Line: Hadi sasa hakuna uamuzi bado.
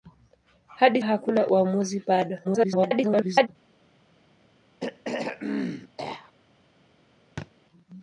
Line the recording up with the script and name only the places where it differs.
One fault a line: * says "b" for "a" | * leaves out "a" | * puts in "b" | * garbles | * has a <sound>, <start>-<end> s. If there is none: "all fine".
* leaves out "sasa"
* garbles
* has a throat clearing, 4.8-6.3 s
* has a thud, 7.4-7.5 s